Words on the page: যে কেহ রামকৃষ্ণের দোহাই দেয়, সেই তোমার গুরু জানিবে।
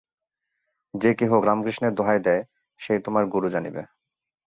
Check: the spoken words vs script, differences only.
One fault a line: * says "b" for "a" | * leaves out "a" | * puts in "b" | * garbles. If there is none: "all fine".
all fine